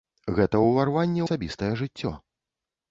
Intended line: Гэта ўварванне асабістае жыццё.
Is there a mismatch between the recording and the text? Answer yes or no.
no